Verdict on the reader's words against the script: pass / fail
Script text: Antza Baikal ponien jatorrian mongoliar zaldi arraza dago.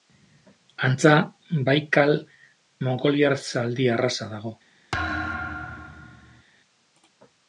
fail